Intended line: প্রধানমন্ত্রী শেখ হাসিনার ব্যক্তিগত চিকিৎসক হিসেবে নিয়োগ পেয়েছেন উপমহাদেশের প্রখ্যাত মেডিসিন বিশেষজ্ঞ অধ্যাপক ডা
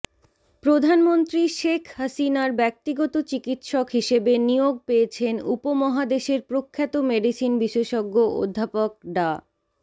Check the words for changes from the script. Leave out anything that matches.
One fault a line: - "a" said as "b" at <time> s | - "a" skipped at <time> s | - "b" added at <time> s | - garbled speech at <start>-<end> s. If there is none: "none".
none